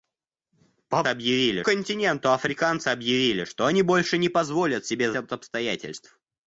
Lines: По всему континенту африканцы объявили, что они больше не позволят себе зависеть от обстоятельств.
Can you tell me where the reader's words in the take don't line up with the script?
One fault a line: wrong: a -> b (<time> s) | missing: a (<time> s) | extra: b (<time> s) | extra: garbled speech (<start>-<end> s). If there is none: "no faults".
wrong: всему -> объявили (1.1 s)
missing: зависеть (5.1 s)